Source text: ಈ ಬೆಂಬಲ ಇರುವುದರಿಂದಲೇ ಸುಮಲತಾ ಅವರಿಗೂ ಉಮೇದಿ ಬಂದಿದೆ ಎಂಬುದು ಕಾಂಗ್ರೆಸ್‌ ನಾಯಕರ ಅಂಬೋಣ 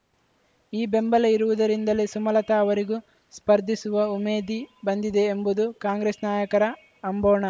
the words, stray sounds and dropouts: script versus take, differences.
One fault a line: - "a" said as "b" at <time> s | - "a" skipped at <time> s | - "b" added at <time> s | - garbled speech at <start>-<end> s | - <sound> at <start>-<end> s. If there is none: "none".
- "ಸ್ಪರ್ಧಿಸುವ" added at 3.3 s